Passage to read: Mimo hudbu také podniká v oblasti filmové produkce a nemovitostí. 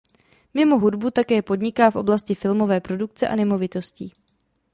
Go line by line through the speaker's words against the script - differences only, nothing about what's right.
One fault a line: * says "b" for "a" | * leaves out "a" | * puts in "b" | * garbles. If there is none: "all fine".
all fine